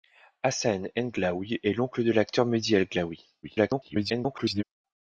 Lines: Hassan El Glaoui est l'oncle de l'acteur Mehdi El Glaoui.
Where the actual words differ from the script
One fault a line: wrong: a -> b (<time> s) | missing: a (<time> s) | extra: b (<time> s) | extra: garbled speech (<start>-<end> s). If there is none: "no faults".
extra: garbled speech (3.4-4.6 s)